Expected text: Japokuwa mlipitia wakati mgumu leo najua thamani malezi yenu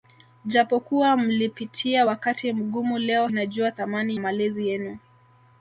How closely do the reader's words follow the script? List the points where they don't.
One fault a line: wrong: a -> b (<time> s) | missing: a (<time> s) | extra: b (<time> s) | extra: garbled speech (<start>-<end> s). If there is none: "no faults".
no faults